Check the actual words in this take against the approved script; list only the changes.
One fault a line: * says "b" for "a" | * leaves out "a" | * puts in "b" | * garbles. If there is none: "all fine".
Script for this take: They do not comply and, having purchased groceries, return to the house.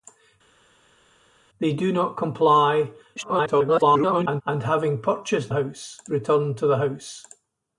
* garbles
* says "house" for "groceries"